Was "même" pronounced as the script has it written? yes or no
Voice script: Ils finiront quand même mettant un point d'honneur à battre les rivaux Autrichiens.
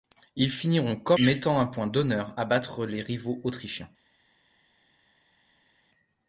no